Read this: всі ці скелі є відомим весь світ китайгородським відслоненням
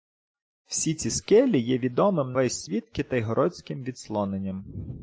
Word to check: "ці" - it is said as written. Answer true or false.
true